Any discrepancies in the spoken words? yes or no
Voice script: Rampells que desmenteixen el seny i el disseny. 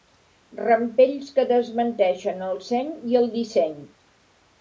no